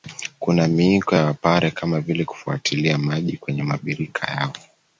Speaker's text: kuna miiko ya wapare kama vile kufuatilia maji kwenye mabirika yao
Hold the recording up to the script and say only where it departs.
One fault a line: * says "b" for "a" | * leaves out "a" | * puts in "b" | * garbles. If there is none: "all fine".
all fine